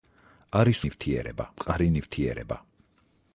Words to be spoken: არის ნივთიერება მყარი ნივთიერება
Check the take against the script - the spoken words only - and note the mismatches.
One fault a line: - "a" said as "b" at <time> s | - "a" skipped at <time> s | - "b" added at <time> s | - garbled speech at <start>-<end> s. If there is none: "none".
none